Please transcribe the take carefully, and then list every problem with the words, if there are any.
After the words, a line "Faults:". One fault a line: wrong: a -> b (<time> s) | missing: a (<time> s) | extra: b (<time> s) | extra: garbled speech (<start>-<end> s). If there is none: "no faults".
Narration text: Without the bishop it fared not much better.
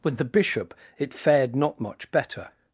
With the bishop it fared not much better.
Faults:
wrong: Without -> With (0.0 s)